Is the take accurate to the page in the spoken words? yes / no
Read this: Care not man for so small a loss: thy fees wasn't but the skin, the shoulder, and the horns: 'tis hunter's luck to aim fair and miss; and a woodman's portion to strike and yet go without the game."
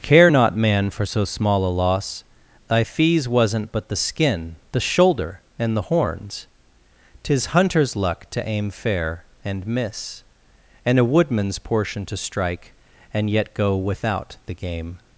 yes